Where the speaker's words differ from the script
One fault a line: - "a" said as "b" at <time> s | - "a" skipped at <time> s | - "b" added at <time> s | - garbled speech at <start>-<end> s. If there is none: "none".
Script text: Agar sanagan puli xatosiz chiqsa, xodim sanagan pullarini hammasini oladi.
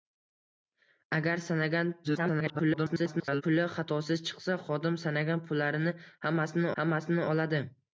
- garbled speech at 2.0-3.4 s
- "hammasini" added at 6.8 s